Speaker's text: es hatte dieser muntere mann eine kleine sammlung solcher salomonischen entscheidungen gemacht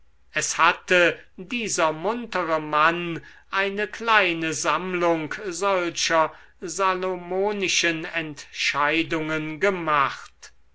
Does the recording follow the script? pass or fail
pass